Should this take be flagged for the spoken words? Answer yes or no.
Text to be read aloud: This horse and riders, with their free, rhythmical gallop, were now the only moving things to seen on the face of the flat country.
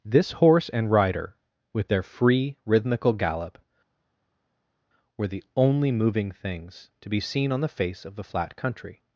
yes